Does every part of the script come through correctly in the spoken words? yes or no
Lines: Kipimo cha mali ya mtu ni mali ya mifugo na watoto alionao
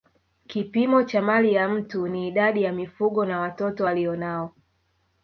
no